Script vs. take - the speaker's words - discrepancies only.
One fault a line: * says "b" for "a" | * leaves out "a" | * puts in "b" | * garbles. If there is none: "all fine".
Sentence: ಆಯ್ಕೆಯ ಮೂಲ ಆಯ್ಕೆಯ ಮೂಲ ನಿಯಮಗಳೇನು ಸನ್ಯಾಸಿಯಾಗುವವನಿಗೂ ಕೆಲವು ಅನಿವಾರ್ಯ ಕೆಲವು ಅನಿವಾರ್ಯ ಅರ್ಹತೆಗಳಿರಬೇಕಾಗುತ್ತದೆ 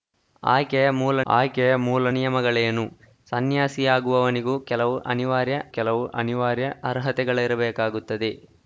all fine